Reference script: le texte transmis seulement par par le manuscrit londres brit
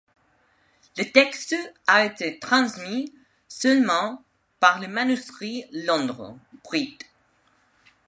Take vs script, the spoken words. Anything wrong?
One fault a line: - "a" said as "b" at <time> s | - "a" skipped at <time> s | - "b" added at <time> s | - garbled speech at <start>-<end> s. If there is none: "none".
- "a été" added at 1.9 s
- "par" skipped at 4.8 s